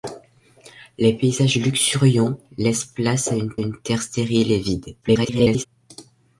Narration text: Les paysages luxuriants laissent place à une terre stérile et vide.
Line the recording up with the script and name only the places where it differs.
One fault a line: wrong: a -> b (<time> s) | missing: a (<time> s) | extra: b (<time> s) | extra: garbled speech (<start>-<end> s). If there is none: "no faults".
extra: une (3.6 s)
extra: garbled speech (5.0-5.7 s)